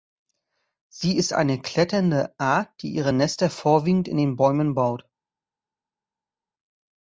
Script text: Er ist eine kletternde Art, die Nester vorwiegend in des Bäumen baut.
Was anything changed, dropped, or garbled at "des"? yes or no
yes